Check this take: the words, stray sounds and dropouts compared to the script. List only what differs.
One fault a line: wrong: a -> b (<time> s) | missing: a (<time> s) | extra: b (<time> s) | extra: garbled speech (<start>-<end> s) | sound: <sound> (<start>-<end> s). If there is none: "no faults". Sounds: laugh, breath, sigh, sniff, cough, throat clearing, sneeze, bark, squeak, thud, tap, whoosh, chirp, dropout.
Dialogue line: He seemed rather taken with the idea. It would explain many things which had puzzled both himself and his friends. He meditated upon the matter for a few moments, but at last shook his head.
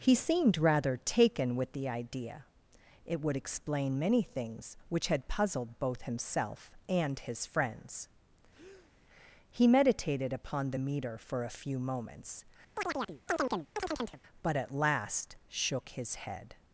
sound: breath (8.5-8.9 s)
wrong: matter -> meter (10.8 s)
sound: chirp (12.8-14.2 s)